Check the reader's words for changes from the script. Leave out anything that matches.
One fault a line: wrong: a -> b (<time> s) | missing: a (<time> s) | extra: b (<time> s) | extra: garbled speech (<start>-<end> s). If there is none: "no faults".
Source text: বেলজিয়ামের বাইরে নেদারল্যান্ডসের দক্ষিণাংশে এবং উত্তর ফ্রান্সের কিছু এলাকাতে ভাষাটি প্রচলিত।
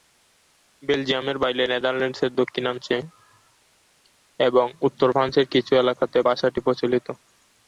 no faults